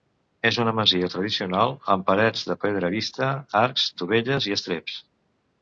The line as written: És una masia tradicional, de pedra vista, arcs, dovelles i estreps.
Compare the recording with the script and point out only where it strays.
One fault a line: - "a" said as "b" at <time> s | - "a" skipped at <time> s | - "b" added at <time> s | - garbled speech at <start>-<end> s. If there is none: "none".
- "amb parets" added at 2.0 s